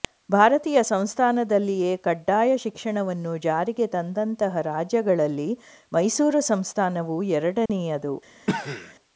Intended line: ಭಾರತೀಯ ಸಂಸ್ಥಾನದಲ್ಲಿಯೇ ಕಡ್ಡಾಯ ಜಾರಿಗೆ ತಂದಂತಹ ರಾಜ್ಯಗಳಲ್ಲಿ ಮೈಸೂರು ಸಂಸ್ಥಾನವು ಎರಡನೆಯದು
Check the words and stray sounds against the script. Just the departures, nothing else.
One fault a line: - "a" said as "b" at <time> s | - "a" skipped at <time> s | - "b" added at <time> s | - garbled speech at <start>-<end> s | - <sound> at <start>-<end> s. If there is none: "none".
- "ಶಿಕ್ಷಣವನ್ನು" added at 2.6 s
- dropout at 7.7-7.7 s
- cough at 8.5-8.9 s